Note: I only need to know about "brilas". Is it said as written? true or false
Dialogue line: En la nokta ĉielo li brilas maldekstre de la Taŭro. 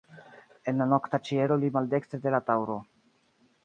false